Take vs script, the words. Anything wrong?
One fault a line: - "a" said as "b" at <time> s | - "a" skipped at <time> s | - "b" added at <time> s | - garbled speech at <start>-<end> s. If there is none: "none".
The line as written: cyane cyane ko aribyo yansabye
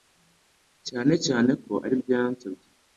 none